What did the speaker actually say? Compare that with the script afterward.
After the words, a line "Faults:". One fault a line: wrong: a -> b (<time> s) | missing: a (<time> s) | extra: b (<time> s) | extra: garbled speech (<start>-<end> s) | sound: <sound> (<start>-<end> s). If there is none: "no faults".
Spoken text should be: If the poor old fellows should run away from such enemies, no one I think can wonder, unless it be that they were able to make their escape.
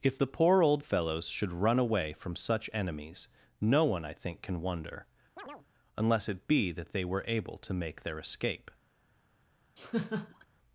If the poor old fellows should run away from such enemies, no one I think can wonder, unless it be that they were able to make their escape.
Faults:
sound: chirp (5.4-5.7 s)
sound: laugh (9.8-10.5 s)